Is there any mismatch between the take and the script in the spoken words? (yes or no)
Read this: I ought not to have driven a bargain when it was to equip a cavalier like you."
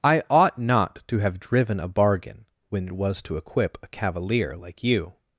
no